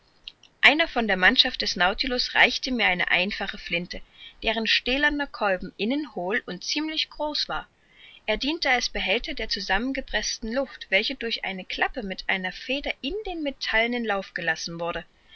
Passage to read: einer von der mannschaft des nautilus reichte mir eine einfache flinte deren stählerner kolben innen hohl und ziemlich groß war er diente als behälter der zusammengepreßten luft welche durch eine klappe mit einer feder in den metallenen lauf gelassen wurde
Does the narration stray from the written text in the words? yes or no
no